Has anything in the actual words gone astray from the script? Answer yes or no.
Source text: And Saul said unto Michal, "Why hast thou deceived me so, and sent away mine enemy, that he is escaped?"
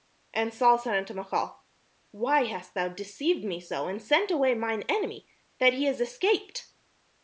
no